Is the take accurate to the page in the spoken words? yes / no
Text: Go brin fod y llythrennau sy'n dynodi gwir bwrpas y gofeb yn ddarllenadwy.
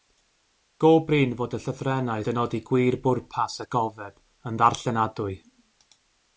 no